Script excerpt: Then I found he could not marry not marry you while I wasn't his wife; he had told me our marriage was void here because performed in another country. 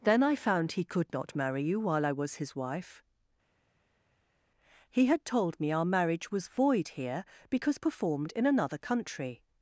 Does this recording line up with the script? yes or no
no